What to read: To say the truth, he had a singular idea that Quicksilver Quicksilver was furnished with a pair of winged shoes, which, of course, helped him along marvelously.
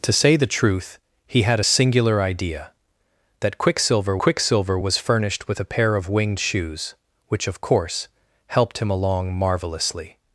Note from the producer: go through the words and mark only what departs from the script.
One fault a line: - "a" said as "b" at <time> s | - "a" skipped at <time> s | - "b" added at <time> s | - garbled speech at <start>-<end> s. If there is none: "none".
none